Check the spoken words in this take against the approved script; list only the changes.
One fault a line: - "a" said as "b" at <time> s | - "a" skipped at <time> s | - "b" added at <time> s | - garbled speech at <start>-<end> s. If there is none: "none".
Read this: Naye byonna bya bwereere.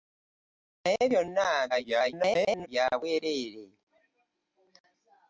- garbled speech at 1.7-2.7 s